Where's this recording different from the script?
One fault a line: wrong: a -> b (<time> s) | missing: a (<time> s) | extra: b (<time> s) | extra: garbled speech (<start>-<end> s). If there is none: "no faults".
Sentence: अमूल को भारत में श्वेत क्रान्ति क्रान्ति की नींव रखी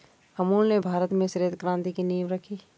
wrong: को -> ने (0.7 s)
missing: क्रान्ति (1.9 s)